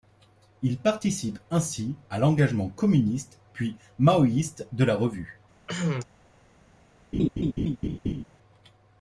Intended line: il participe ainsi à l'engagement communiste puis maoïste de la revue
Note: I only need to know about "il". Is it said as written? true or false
true